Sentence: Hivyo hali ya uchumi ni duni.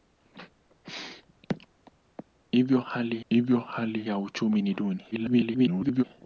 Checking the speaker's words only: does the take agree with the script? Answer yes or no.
no